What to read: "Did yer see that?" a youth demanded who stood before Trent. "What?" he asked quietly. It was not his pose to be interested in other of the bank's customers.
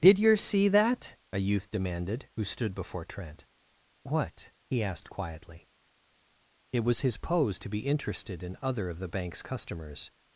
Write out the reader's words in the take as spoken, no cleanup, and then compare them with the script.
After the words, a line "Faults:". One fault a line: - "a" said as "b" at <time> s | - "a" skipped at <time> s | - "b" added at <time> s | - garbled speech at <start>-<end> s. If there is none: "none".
"Did yer see that?" a youth demanded who stood before Trent. "What?" he asked quietly. It was his pose to be interested in other of the bank's customers.
Faults:
- "not" skipped at 7.0 s